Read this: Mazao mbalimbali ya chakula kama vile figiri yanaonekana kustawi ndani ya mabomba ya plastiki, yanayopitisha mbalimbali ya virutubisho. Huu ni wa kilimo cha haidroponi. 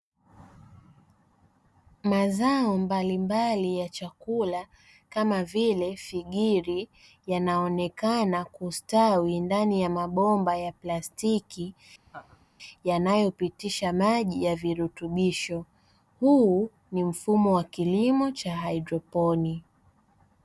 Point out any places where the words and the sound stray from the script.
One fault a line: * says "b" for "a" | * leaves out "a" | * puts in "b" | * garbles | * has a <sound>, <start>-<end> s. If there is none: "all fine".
* has a laugh, 12.1-12.5 s
* says "maji" for "mbalimbali"
* puts in "mfumo"